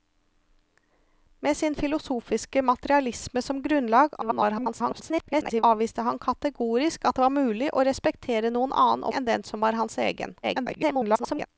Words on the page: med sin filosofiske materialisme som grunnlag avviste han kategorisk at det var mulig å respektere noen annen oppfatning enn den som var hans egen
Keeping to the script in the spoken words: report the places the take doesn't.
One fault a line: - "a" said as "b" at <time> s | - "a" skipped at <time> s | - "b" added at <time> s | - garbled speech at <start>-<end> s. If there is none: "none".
- garbled speech at 4.2-5.6 s
- "oppfatning" skipped at 9.0 s
- garbled speech at 10.4-11.5 s